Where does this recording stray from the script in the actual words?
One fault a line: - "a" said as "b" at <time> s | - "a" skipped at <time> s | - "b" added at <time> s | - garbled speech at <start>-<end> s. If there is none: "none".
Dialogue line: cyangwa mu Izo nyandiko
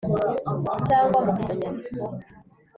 none